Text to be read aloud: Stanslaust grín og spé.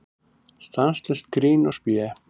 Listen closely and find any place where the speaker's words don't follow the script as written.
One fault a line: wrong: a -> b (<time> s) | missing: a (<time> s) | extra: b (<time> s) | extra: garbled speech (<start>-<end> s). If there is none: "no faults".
no faults